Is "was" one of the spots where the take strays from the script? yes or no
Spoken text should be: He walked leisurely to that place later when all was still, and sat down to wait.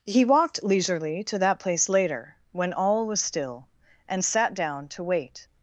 no